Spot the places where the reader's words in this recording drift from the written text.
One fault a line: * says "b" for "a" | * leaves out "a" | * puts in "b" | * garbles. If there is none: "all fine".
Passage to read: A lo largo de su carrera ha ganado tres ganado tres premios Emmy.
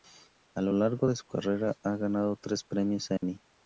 * leaves out "ganado tres"